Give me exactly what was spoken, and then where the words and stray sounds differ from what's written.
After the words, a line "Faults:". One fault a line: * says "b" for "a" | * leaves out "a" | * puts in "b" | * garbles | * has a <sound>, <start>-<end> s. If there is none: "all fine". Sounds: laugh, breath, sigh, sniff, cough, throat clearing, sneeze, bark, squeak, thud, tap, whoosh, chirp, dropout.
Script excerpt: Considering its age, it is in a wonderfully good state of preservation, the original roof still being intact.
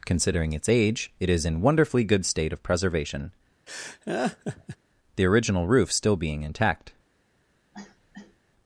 Considering its age, it is in wonderfully good state of preservation, the original roof still being intact.
Faults:
* leaves out "a"
* has a laugh, 3.7-4.8 s
* has a cough, 7.7-8.4 s